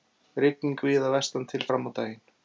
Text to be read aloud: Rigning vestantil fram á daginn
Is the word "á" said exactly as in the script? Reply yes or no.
yes